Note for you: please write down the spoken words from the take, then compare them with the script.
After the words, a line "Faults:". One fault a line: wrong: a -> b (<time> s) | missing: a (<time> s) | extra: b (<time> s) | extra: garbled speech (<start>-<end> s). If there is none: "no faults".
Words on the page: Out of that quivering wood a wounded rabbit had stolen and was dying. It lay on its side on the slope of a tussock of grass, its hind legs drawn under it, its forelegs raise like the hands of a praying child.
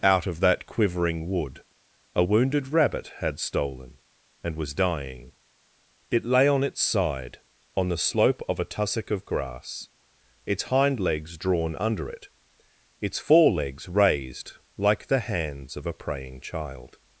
Out of that quivering wood a wounded rabbit had stolen and was dying. It lay on its side on the slope of a tussock of grass, its hind legs drawn under it, its forelegs raised like the hands of a praying child.
Faults:
wrong: raise -> raised (13.9 s)